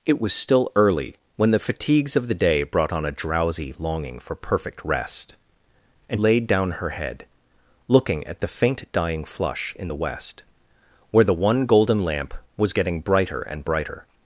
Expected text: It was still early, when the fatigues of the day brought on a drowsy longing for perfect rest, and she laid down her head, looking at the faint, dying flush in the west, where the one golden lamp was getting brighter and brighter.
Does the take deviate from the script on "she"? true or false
true